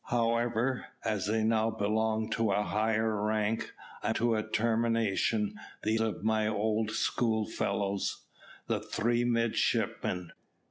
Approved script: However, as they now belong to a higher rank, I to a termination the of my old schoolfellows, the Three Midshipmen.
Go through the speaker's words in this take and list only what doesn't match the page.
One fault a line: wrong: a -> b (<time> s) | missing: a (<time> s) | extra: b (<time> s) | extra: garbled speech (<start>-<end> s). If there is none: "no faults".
no faults